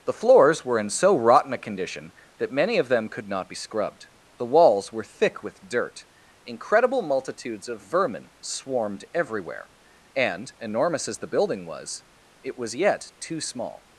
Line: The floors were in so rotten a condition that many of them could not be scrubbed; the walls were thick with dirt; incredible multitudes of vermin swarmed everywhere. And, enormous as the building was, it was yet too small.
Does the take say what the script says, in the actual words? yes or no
yes